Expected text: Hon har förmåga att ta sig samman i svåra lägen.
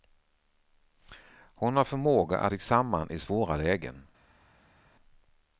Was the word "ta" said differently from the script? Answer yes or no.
yes